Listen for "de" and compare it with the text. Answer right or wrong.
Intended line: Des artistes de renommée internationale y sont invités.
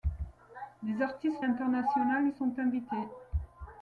wrong